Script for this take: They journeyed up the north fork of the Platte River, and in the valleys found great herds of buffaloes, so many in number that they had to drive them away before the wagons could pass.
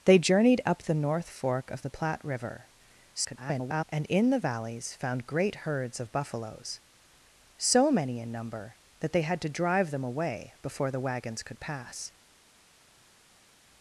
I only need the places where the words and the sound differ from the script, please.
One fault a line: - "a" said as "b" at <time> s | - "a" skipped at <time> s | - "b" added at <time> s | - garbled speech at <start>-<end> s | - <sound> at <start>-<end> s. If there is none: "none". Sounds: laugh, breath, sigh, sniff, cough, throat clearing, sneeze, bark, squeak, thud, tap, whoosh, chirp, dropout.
- garbled speech at 3.1-3.8 s